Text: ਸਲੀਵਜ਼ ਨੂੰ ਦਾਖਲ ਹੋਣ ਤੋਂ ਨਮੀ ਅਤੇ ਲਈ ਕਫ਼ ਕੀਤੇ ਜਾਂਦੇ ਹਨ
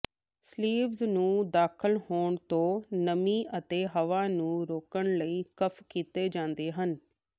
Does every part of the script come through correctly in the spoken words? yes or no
no